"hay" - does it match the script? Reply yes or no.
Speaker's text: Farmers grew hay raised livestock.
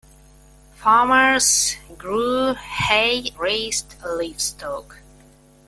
yes